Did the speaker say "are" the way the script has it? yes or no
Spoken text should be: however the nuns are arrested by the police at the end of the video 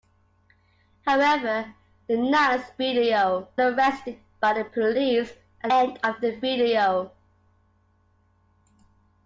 no